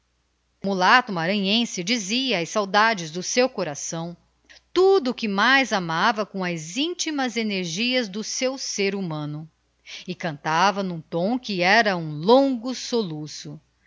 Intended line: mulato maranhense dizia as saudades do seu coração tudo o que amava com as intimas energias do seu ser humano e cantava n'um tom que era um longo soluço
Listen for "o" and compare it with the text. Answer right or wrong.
right